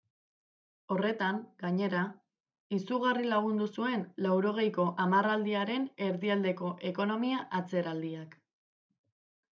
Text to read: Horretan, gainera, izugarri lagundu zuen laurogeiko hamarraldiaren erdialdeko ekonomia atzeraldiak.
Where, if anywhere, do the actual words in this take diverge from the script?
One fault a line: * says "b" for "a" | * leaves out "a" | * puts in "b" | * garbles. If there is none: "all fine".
all fine